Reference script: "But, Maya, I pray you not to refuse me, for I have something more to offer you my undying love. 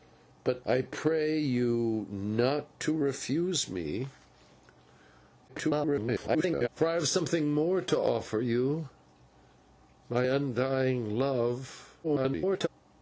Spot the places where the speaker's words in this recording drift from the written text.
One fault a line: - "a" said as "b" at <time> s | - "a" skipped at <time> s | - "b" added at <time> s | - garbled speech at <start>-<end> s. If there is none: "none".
- "Maya" skipped at 0.7 s
- garbled speech at 5.5-6.7 s
- garbled speech at 12.0-12.7 s